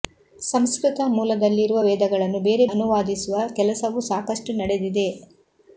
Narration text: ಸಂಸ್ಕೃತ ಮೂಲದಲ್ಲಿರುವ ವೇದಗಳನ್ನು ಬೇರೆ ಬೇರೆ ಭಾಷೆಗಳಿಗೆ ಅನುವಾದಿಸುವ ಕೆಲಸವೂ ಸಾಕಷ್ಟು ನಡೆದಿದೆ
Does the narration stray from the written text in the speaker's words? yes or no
yes